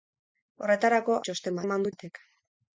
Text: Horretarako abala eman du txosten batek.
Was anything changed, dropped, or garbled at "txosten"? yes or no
yes